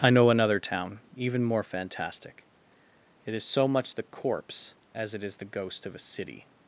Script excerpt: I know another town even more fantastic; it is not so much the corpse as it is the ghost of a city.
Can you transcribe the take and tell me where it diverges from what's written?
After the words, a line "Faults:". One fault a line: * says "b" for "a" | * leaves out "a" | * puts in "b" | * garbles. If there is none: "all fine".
I know another town even more fantastic; it is so much the corpse as it is the ghost of a city.
Faults:
* leaves out "not"